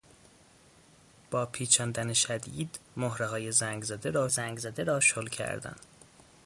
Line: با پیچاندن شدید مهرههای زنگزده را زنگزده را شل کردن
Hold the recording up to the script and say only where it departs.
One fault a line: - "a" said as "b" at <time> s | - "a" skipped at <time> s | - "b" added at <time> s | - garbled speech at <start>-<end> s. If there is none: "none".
none